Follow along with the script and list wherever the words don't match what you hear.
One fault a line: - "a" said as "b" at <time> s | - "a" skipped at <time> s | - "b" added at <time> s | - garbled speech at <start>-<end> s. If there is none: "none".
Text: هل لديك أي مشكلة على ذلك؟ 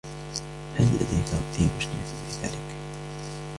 - "على" said as "في" at 2.3 s